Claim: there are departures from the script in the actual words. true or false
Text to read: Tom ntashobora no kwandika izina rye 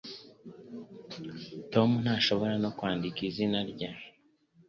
false